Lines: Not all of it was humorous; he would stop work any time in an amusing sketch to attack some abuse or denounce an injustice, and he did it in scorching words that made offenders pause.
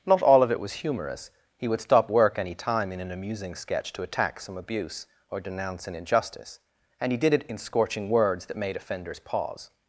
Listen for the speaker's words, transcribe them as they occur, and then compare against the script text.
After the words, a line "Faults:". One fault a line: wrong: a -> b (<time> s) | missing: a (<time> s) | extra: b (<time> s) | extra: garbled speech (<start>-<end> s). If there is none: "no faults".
Not all of it was humorous; he would stop work any time in an amusing sketch to attack some abuse or denounce an injustice, and he did it in scorching words that made offenders pause.
Faults:
no faults